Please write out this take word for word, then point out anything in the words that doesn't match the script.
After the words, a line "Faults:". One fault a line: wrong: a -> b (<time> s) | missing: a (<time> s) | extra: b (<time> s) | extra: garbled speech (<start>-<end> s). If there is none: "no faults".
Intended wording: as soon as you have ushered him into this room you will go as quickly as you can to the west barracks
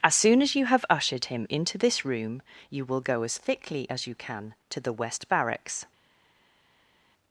as soon as you have ushered him into this room you will go as thickly as you can to the west barracks
Faults:
wrong: quickly -> thickly (3.4 s)